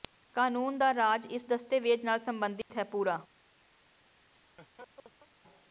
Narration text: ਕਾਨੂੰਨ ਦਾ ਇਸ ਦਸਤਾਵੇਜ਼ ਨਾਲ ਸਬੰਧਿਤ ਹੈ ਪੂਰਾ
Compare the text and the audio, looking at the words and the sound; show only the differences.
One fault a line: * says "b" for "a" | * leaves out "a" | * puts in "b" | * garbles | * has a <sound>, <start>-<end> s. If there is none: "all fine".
* puts in "ਰਾਜ"
* has a dropout, 2.6-2.7 s
* has a laugh, 4.3-5.3 s